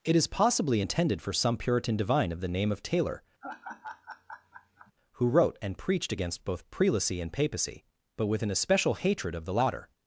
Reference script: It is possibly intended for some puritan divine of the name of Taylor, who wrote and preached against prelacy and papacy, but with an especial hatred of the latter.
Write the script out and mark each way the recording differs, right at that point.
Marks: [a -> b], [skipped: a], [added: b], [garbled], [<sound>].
It is possibly intended for some puritan divine of the name of Taylor, [laugh] who wrote and preached against [added: both] prelacy and papacy, but with an especial hatred of the latter.